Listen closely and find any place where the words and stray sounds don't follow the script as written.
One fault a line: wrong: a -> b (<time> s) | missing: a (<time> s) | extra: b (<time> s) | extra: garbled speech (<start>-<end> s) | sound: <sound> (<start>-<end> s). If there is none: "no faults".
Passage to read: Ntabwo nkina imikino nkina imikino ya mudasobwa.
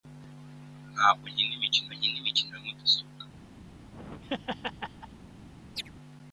sound: laugh (3.7-5.2 s)
sound: chirp (5.8-5.9 s)